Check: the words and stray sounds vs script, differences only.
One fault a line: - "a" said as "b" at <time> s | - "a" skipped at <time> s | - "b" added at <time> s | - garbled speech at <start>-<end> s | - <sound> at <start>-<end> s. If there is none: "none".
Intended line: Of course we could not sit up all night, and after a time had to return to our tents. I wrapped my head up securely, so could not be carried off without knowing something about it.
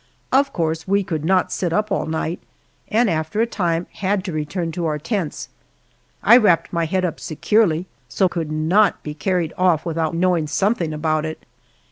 none